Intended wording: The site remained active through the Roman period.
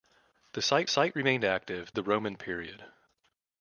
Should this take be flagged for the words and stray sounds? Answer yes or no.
yes